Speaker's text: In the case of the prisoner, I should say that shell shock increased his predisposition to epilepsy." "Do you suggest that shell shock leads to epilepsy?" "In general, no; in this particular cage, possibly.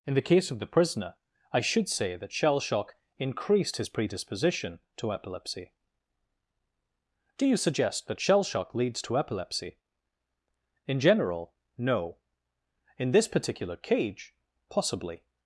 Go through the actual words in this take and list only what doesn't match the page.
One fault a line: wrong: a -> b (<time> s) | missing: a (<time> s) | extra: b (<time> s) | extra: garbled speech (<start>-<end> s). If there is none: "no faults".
no faults